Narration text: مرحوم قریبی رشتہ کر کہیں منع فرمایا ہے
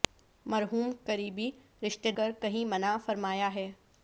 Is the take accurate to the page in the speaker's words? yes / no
yes